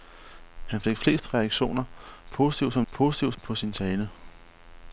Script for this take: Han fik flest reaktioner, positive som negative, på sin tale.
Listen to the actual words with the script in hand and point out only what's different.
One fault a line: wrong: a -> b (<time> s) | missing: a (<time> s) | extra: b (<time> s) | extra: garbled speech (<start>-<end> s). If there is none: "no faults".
wrong: negative -> positive (2.9 s)